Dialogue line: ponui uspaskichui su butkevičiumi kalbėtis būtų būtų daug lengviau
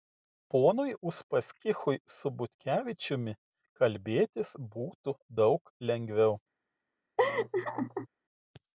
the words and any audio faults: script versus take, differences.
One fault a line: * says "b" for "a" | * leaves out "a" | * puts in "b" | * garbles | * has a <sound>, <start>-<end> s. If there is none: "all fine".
* leaves out "būtų"
* has a laugh, 7.2-8.1 s